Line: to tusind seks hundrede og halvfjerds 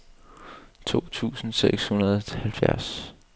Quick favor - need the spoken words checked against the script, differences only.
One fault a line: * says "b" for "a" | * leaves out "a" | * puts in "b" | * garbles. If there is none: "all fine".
all fine